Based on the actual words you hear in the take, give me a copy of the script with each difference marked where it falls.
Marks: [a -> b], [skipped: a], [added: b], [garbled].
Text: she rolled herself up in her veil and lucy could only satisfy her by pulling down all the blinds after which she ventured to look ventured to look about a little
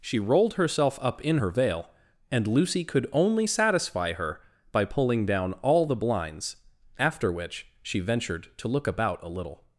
she rolled herself up in her veil and lucy could only satisfy her by pulling down all the blinds after which she ventured to look [skipped: ventured to look] about a little